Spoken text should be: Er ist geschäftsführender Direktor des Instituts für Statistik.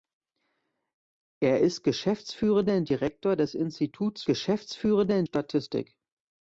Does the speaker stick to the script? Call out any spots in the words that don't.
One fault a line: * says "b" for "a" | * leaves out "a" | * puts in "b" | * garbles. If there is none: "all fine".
* says "geschäftsführender" for "für"